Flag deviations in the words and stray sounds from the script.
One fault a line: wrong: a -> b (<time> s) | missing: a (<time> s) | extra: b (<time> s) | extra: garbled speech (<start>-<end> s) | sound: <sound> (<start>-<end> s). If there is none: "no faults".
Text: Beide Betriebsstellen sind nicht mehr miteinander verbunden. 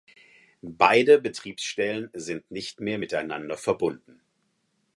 no faults